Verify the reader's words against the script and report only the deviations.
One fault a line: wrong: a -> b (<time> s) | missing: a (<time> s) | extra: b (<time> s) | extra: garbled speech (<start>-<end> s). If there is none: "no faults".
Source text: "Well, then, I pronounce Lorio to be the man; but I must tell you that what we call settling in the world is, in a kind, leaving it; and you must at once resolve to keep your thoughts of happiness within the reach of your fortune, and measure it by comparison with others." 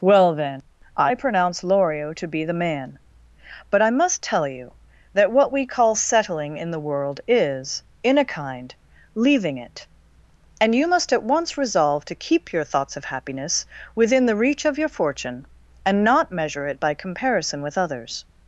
extra: not (16.0 s)